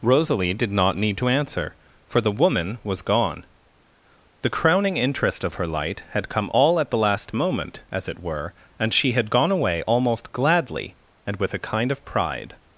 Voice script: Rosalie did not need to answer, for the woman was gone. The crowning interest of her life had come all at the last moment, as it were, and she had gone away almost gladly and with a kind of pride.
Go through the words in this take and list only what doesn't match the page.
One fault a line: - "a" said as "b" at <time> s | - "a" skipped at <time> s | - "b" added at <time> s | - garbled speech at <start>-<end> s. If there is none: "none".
- "life" said as "light" at 5.7 s